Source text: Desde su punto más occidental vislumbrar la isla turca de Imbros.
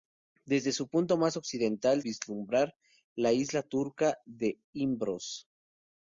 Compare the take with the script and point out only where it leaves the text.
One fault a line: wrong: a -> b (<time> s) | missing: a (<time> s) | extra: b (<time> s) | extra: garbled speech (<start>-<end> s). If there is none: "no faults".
no faults